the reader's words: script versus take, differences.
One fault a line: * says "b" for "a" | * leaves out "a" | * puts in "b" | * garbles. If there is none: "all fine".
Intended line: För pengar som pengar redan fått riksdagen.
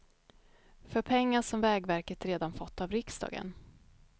* says "vägverket" for "pengar"
* puts in "av"